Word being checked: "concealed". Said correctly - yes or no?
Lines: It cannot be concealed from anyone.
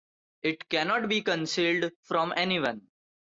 yes